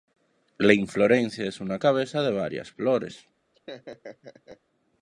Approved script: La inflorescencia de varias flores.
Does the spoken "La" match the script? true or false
true